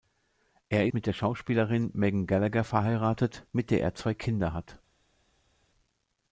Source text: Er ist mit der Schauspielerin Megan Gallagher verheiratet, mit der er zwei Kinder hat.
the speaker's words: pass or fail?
fail